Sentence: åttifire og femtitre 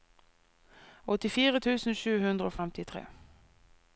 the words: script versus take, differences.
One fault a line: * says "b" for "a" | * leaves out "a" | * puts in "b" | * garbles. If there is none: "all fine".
* puts in "tusen sju hundre"